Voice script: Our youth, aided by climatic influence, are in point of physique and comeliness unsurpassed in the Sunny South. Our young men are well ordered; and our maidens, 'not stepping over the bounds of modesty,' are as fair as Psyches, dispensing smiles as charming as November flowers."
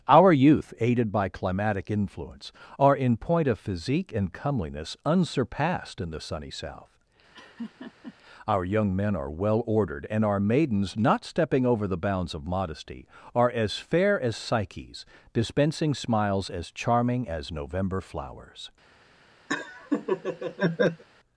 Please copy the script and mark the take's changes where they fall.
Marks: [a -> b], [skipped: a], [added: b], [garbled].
Our youth, aided by climatic influence, are in point of physique and comeliness unsurpassed in the Sunny South. Our young men are well ordered; and our maidens, 'not stepping over the bounds of modesty,' are as fair as Psyches, dispensing smiles as charming as November flowers."